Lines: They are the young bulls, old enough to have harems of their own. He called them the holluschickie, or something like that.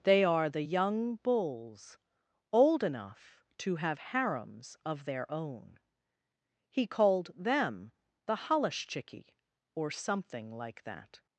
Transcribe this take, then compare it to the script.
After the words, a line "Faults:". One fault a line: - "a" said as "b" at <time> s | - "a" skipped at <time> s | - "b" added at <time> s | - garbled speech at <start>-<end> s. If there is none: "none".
They are the young bulls, old enough to have harems of their own. He called them the holluschickie, or something like that.
Faults:
none